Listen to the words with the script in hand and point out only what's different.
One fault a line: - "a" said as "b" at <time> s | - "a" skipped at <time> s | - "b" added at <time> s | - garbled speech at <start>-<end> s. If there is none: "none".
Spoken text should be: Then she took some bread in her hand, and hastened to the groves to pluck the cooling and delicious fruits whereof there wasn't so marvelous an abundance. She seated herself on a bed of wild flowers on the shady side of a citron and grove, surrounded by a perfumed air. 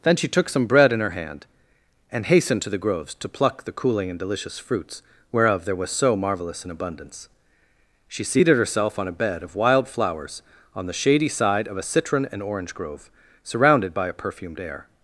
- "wasn't" said as "was" at 5.8 s
- "orange" added at 12.4 s